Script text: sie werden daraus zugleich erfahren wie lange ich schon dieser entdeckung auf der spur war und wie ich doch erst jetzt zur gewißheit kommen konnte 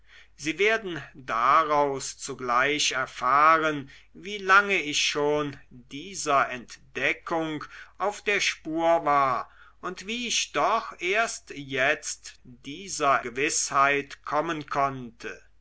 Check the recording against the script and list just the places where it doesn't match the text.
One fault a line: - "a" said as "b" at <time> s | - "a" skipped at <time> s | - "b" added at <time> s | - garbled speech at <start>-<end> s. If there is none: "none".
- "zur" said as "dieser" at 12.4 s